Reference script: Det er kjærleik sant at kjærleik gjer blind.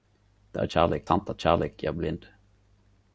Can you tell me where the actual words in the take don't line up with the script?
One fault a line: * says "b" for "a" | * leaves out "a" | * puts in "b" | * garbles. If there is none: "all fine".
all fine